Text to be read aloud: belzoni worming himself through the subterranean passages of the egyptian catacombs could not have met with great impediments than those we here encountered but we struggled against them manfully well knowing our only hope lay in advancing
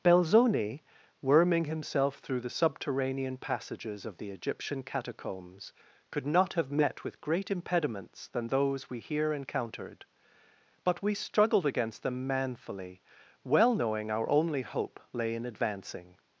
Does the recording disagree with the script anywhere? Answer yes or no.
no